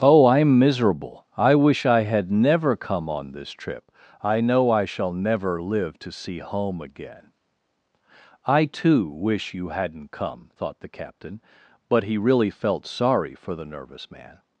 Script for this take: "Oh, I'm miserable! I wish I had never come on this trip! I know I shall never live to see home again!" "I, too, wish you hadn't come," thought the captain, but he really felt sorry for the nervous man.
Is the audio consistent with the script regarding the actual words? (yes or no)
yes